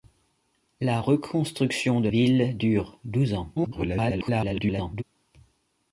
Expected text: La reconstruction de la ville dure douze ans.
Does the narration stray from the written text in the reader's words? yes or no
yes